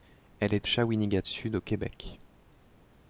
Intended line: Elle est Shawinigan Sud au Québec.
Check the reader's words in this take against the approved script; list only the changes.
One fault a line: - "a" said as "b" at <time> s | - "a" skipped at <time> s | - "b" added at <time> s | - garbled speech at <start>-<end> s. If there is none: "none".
none